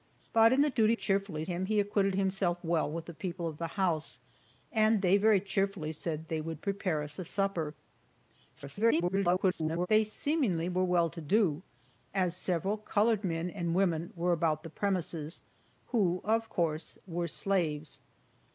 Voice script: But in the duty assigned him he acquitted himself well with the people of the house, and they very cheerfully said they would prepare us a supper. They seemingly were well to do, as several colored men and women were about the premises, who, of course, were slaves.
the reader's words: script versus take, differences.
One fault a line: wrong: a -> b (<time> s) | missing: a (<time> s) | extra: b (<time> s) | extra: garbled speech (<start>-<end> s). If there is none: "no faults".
wrong: assigned -> cheerfully (0.9 s)
extra: garbled speech (8.5-9.9 s)